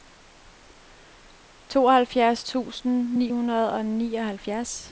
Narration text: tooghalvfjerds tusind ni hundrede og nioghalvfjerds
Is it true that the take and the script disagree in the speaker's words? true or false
false